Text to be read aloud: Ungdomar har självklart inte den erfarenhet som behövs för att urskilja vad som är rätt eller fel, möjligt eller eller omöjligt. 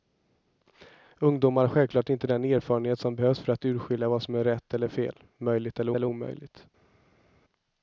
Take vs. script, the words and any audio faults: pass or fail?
pass